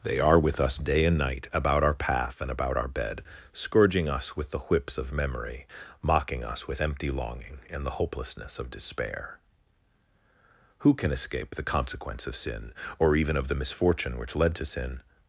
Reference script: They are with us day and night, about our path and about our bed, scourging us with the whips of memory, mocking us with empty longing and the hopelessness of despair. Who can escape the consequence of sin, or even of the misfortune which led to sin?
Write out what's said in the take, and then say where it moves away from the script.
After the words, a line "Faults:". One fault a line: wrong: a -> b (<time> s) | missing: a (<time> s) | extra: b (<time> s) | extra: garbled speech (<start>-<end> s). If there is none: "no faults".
They are with us day and night, about our path and about our bed, scourging us with the whips of memory, mocking us with empty longing and the hopelessness of despair. Who can escape the consequence of sin, or even of the misfortune which led to sin?
Faults:
no faults